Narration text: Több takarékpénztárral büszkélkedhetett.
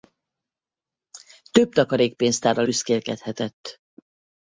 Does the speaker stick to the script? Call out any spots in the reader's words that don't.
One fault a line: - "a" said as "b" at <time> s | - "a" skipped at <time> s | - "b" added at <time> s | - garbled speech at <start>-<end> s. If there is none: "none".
none